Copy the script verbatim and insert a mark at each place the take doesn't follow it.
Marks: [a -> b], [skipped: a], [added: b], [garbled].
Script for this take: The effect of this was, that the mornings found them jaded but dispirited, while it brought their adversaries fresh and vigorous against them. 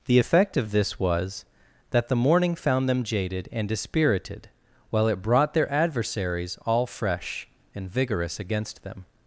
The effect of this was, that the [mornings -> morning] found them jaded [but -> and] dispirited, while it brought their adversaries [added: all] fresh and vigorous against them.